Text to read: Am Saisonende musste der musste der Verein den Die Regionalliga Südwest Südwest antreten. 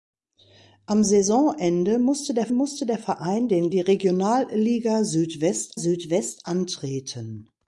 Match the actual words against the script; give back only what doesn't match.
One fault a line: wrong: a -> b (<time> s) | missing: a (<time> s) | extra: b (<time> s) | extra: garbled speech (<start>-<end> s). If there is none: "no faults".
no faults